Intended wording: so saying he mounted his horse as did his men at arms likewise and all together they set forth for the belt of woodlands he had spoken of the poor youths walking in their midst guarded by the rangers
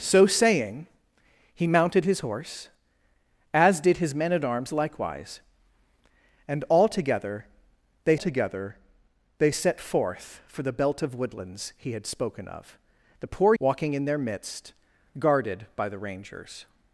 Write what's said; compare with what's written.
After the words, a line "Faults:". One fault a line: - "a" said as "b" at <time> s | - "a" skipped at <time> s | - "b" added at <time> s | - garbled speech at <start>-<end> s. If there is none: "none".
so saying he mounted his horse as did his men at arms likewise and all together they together they set forth for the belt of woodlands he had spoken of the poor walking in their midst guarded by the rangers
Faults:
- "together they" added at 8.1 s
- "youths" skipped at 13.5 s